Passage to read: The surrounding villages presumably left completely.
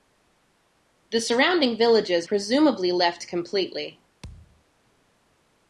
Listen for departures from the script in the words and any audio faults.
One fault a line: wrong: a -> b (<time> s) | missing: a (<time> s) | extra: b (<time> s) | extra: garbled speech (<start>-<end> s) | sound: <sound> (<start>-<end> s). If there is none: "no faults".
sound: thud (4.2-4.6 s)